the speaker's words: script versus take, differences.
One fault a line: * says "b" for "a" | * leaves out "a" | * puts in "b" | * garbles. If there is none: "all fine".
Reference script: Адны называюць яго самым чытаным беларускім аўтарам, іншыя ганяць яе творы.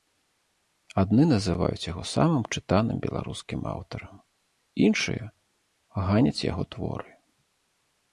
* says "яго" for "яе"